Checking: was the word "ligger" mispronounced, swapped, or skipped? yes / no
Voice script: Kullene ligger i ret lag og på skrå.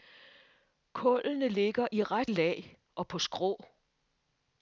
no